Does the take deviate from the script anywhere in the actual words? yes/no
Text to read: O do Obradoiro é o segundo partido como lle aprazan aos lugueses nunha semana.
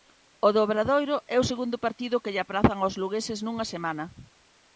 yes